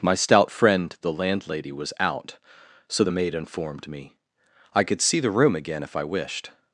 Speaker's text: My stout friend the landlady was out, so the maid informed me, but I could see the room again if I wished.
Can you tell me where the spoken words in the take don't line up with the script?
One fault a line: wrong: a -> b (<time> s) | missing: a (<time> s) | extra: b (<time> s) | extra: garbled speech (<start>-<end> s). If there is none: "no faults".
missing: but (4.1 s)